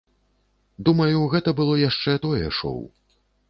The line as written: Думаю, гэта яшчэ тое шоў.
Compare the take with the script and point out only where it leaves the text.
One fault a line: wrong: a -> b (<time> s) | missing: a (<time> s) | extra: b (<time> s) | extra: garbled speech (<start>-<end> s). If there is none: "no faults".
extra: было (1.6 s)